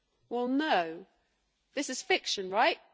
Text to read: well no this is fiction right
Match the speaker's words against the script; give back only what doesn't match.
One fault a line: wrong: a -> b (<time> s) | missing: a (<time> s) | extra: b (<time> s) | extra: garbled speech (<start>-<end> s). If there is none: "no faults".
no faults